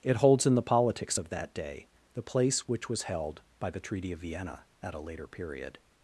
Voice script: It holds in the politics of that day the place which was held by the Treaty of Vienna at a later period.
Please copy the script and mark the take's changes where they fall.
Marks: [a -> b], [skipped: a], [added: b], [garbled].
It holds in the politics of that day the place which was held by the Treaty of Vienna at a later period.